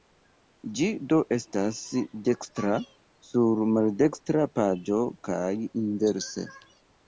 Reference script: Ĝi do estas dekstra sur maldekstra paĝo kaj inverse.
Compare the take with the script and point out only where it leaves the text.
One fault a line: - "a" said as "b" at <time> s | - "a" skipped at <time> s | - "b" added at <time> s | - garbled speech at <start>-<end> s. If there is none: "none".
none